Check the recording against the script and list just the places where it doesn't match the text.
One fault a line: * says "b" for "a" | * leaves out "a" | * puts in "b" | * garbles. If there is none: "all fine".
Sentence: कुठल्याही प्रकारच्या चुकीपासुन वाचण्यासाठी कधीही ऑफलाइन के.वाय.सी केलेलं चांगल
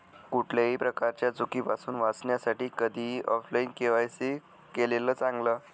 all fine